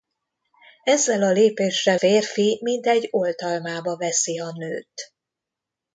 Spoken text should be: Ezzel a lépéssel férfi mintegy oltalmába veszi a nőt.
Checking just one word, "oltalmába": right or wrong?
right